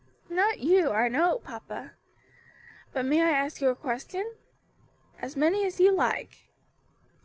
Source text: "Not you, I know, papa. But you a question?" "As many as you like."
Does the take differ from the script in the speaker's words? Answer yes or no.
yes